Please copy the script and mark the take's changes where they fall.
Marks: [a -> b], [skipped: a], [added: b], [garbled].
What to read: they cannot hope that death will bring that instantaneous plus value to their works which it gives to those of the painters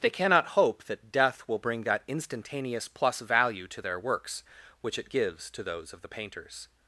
they cannot hope that death will bring that instantaneous plus value to their works which it gives to those of the painters